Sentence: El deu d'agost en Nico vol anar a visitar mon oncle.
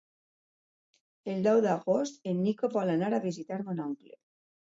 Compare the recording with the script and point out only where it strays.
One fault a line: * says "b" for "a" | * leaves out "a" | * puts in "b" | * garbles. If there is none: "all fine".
all fine